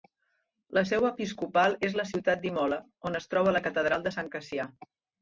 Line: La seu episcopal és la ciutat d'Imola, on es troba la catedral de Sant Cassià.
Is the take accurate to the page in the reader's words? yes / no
yes